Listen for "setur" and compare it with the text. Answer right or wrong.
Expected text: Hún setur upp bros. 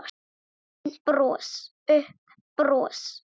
wrong